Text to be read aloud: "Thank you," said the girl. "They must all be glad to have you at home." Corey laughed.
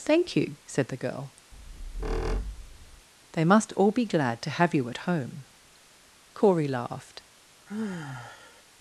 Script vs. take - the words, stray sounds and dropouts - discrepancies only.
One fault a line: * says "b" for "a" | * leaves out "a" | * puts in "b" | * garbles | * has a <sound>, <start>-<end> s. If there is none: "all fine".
* has a squeak, 1.5-3.1 s
* has a sigh, 7.7-8.6 s